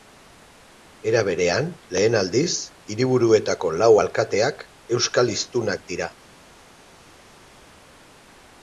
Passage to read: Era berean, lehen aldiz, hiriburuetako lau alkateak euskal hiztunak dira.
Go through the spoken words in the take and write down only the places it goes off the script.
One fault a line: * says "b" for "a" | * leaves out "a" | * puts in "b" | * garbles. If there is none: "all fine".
all fine